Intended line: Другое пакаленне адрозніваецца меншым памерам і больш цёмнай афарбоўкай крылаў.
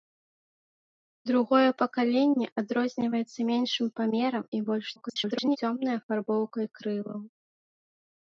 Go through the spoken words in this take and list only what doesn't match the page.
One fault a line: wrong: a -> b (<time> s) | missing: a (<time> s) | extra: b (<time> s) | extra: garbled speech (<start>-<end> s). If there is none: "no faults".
extra: garbled speech (5.0-5.6 s)